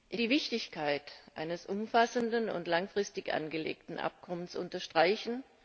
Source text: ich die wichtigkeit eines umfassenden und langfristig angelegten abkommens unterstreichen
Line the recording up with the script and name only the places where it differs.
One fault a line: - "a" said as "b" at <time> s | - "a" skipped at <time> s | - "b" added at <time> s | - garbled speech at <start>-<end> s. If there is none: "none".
none